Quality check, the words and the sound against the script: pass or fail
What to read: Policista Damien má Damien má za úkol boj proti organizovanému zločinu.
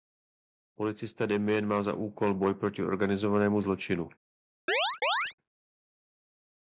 fail